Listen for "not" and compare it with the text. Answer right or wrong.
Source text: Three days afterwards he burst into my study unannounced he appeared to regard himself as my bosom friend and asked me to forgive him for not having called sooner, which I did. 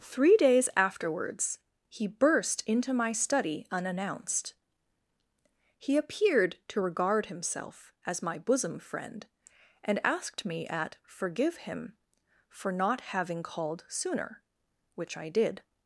right